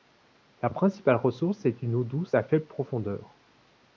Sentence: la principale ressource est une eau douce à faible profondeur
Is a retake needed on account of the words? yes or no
no